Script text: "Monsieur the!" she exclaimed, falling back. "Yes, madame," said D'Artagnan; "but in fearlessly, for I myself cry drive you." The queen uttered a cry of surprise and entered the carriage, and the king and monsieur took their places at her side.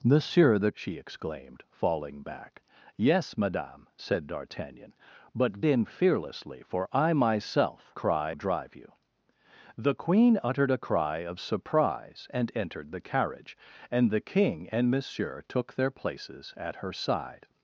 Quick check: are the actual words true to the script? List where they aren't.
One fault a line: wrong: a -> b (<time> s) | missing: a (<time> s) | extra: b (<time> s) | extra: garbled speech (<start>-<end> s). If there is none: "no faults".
no faults